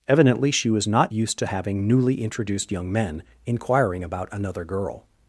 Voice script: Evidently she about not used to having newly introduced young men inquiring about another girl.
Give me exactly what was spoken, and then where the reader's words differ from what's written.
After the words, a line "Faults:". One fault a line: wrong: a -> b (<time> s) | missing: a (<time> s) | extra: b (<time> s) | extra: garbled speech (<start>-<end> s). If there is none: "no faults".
Evidently she was not used to having newly introduced young men inquiring about another girl.
Faults:
wrong: about -> was (0.7 s)